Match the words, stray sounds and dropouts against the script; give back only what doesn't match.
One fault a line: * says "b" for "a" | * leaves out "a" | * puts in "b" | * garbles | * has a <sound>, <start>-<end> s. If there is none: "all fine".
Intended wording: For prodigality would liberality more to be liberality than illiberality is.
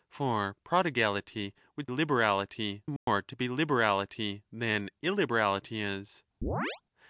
* has a dropout, 3.0-3.1 s
* has a chirp, 6.4-6.8 s